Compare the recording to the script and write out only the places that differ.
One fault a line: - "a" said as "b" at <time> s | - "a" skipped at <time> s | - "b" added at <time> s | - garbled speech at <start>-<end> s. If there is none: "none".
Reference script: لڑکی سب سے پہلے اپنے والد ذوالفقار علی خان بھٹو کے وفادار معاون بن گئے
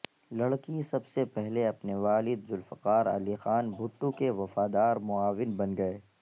none